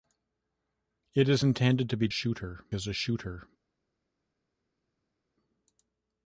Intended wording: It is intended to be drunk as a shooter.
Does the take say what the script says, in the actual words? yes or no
no